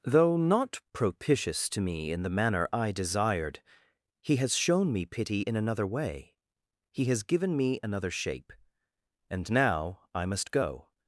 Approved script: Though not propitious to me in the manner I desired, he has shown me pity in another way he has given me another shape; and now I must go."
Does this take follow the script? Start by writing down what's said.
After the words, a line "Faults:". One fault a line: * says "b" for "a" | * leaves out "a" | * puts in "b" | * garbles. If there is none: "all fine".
Though not propitious to me in the manner I desired, he has shown me pity in another way he has given me another shape; and now I must go."
Faults:
all fine